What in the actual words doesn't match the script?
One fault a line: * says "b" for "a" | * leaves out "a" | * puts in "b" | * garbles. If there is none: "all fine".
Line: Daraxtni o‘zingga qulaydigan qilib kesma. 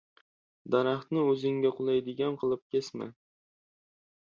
all fine